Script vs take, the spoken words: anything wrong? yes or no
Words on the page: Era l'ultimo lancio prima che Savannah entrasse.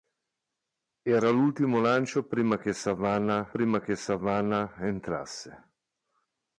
yes